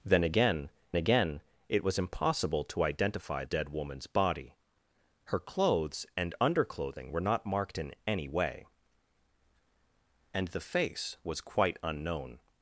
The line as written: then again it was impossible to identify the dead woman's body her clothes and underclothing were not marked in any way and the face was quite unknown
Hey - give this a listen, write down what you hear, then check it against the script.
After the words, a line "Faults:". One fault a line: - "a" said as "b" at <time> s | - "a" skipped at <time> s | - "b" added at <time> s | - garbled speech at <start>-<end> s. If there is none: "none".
then again again it was impossible to identify dead woman's body her clothes and underclothing were not marked in any way and the face was quite unknown
Faults:
- "again" added at 1.0 s
- "the" skipped at 3.4 s